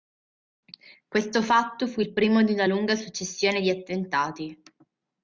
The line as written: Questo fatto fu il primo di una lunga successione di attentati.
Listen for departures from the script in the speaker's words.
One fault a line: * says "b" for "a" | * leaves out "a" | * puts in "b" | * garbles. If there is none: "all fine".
all fine